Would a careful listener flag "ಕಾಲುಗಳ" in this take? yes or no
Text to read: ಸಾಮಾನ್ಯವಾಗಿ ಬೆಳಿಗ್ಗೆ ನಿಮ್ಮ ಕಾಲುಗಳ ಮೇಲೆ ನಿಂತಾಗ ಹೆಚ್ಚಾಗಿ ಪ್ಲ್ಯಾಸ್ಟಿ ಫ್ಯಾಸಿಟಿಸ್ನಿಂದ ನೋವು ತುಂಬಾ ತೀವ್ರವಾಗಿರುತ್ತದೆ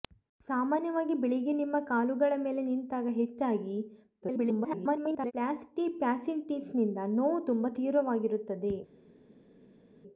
no